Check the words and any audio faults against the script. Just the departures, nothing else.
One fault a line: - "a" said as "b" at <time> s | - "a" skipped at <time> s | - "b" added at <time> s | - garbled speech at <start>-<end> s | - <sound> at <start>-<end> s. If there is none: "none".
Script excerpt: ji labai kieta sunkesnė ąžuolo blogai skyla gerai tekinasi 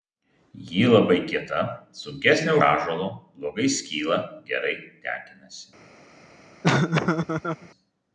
- laugh at 6.6-7.7 s